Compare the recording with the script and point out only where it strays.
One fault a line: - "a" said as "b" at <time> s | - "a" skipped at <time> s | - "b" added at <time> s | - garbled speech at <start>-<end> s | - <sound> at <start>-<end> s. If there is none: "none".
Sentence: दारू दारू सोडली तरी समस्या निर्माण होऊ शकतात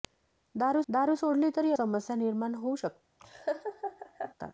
- laugh at 3.2-4.3 s